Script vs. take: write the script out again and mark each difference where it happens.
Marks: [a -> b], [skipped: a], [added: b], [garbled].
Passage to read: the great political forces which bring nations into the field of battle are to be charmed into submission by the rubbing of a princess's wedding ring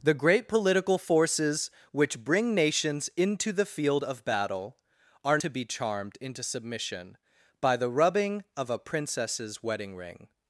the great political forces which bring nations into the field of battle are to be charmed into submission by the rubbing of a princess's wedding ring